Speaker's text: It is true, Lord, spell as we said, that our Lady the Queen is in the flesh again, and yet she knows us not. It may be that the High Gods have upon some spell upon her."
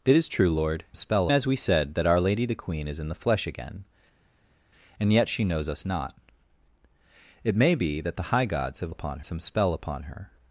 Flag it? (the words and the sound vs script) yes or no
no